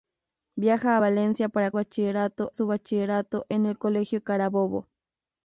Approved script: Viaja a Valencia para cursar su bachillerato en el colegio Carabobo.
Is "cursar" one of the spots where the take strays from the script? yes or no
yes